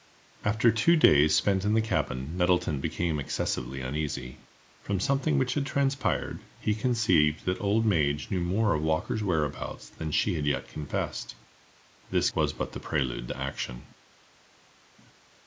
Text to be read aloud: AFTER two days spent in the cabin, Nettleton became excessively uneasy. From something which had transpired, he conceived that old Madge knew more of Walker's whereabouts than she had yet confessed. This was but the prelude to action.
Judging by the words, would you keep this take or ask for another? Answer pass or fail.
pass